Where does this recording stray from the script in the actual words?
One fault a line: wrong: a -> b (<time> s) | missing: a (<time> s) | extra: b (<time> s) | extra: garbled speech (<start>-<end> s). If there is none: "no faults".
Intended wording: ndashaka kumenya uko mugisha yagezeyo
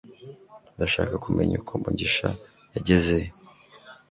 no faults